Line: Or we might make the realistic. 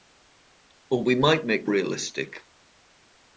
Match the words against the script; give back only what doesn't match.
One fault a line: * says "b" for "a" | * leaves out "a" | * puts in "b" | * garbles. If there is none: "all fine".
all fine